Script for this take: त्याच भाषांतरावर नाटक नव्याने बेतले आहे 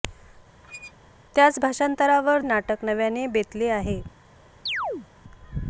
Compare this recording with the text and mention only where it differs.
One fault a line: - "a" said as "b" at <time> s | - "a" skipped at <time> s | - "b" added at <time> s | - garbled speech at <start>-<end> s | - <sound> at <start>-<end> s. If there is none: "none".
- squeak at 0.6-0.9 s
- chirp at 4.7-5.1 s